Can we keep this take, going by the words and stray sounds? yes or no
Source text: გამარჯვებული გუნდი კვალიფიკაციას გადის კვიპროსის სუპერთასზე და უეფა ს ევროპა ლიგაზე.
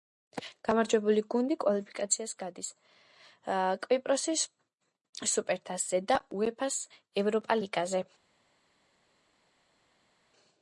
yes